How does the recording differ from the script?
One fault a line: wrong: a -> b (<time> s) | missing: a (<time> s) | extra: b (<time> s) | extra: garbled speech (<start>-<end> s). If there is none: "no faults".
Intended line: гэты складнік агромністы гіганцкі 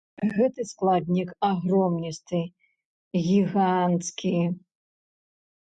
no faults